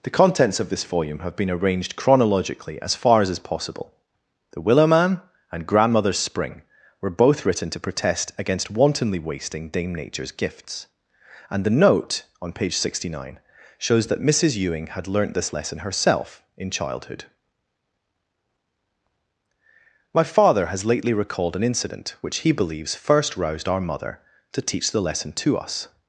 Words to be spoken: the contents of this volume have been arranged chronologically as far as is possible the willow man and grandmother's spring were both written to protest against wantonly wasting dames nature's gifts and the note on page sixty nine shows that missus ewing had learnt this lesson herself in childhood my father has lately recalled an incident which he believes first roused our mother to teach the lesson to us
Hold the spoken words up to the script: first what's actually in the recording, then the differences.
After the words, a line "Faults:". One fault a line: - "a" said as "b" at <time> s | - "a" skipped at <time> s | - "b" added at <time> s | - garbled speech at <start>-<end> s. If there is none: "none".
the contents of this volume have been arranged chronologically as far as is possible the willow man and grandmother's spring were both written to protest against wantonly wasting dame nature's gifts and the note on page sixty nine shows that missus ewing had learnt this lesson herself in childhood my father has lately recalled an incident which he believes first roused our mother to teach the lesson to us
Faults:
- "dames" said as "dame" at 9.7 s